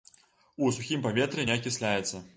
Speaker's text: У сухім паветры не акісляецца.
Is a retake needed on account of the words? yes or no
no